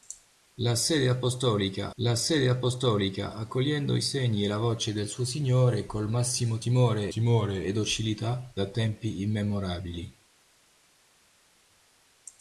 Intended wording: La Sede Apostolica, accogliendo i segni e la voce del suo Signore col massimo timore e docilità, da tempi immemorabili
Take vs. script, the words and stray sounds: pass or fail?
fail